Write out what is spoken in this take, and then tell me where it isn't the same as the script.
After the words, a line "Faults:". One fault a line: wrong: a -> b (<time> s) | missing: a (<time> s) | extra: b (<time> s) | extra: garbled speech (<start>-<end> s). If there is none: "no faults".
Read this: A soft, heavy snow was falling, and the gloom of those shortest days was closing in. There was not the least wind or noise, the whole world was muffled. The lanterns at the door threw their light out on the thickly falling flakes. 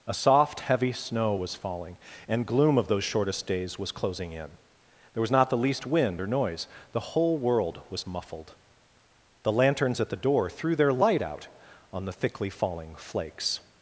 A soft, heavy snow was falling, and gloom of those shortest days was closing in. There was not the least wind or noise, the whole world was muffled. The lanterns at the door threw their light out on the thickly falling flakes.
Faults:
missing: the (2.5 s)